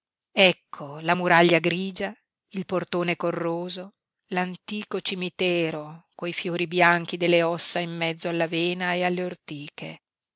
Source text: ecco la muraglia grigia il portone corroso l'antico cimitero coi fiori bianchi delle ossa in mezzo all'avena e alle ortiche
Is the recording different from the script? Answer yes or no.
no